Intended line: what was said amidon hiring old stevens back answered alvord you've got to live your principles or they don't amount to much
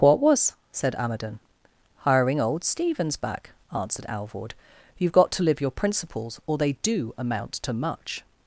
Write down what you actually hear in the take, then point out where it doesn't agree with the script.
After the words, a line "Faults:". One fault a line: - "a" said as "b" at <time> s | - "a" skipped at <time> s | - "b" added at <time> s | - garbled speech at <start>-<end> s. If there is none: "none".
what was said amidon hiring old stevens back answered alvord you've got to live your principles or they do amount to much
Faults:
- "don't" said as "do" at 6.8 s